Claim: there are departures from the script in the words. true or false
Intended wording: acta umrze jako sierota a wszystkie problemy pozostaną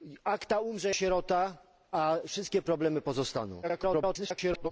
true